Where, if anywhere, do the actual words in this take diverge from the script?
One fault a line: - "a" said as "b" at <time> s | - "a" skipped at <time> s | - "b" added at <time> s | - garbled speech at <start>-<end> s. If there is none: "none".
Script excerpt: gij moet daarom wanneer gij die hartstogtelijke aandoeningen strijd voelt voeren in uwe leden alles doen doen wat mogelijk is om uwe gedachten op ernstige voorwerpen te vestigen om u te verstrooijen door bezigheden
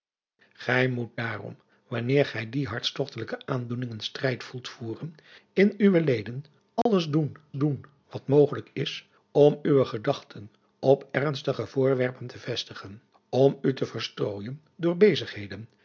none